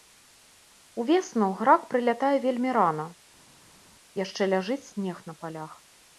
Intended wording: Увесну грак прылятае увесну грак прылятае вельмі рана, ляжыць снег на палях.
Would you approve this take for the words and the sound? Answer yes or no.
no